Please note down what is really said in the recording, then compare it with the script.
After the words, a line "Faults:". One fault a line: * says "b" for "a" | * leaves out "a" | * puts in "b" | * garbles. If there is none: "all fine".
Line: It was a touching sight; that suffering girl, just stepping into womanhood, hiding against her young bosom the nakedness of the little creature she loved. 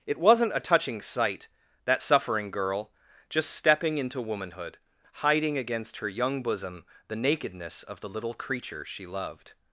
It wasn't a touching sight; that suffering girl, just stepping into womanhood, hiding against her young bosom the nakedness of the little creature she loved.
Faults:
* says "wasn't" for "was"